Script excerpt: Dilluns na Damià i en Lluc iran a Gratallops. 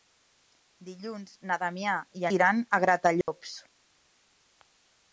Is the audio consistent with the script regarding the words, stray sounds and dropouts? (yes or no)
no